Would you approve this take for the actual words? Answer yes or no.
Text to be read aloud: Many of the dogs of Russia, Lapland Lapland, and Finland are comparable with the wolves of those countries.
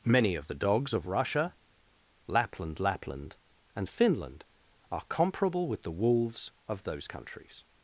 yes